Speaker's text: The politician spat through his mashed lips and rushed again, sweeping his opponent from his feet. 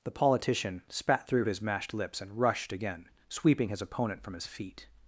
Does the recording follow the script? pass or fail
pass